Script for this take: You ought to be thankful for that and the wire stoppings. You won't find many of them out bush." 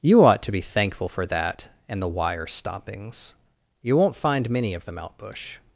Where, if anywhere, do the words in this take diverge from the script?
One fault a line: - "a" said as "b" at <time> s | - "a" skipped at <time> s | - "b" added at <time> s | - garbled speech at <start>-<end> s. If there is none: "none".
none